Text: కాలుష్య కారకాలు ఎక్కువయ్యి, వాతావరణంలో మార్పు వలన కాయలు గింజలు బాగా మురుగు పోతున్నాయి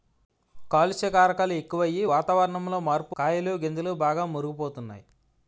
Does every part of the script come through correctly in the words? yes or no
no